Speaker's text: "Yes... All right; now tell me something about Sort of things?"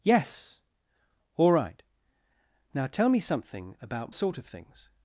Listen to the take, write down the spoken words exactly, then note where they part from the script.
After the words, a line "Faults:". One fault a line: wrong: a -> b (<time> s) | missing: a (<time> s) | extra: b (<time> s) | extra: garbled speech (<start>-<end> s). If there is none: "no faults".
"Yes... All right; now tell me something about Sort of things?"
Faults:
no faults